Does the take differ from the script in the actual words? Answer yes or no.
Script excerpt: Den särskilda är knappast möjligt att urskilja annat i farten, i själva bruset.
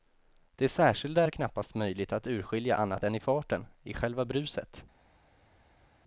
yes